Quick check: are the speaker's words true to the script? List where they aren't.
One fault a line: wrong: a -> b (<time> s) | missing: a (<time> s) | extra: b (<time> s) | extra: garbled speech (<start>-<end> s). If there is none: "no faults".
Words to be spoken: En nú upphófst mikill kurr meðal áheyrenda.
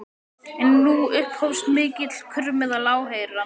no faults